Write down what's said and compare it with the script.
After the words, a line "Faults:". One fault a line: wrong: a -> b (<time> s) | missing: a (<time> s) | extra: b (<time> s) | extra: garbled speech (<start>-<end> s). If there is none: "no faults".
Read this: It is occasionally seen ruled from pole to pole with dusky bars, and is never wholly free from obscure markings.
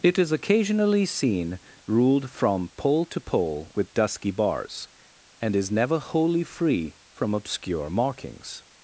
It is occasionally seen ruled from pole to pole with dusky bars, and is never wholly free from obscure markings.
Faults:
no faults